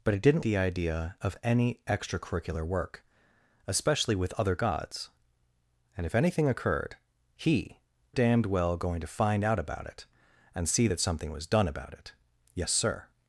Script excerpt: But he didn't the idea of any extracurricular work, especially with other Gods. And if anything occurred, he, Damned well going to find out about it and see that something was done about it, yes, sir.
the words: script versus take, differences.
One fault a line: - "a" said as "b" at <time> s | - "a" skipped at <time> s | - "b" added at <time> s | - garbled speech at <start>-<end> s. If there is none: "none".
none